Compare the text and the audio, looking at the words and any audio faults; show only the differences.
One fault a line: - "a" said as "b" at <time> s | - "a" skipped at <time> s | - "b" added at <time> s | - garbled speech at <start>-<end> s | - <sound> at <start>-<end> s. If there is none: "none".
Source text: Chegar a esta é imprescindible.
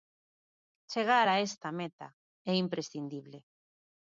- "meta" added at 1.8 s